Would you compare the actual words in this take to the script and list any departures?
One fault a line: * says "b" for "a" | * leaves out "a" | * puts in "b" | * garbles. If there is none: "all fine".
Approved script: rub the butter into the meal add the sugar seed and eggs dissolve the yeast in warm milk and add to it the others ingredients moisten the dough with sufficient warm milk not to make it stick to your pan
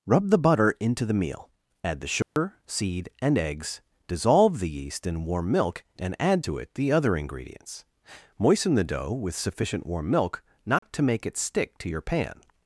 * says "other" for "others"